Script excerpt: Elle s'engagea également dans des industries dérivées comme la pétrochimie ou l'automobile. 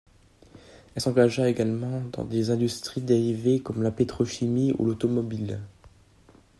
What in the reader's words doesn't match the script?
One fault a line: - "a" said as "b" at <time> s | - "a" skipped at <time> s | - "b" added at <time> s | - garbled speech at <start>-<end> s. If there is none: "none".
none